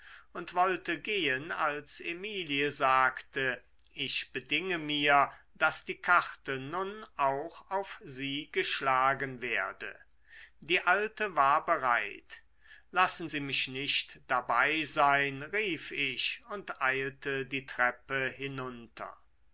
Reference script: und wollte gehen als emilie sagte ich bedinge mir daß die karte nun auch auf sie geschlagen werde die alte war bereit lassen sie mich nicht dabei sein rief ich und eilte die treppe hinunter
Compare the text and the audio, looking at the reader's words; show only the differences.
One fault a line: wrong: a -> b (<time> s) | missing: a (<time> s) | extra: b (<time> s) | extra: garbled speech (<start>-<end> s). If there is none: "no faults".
no faults